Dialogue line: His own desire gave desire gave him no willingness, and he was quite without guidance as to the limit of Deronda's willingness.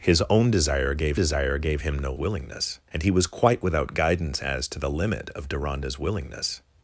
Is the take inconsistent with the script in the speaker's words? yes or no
no